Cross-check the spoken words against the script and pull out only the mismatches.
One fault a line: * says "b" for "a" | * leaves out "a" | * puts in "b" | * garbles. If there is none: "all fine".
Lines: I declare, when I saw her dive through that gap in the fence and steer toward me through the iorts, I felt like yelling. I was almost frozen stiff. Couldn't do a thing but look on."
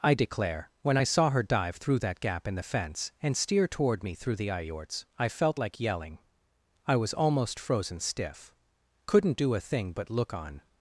all fine